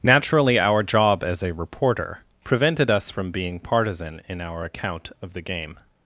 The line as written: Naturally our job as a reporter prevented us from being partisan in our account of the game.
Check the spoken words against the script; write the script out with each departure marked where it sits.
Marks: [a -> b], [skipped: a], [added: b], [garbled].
Naturally our job as a reporter prevented us from being partisan in our account of the game.